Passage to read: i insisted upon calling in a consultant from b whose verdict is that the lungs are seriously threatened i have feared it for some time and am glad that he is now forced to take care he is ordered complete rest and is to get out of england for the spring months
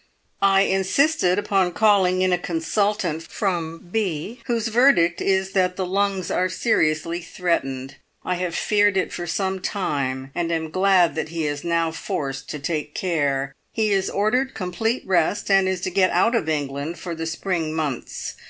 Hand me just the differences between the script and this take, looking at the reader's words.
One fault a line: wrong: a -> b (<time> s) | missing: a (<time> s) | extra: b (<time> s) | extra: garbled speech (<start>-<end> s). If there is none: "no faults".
no faults